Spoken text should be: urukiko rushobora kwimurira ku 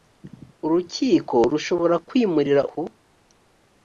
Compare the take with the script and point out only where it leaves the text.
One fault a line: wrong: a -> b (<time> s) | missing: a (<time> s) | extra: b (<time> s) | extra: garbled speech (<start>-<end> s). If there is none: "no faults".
no faults